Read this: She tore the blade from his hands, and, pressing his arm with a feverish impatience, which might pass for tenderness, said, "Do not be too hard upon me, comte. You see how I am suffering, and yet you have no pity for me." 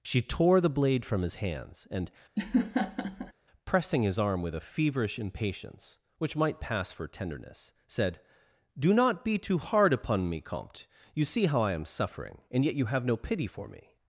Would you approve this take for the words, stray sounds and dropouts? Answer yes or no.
no